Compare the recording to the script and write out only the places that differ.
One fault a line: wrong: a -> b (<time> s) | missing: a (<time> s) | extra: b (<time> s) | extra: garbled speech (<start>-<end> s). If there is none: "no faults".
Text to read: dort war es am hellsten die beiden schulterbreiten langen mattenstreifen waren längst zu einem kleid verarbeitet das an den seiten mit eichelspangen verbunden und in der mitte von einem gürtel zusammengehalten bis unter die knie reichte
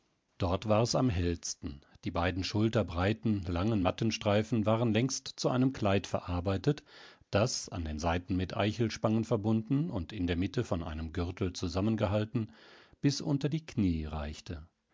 no faults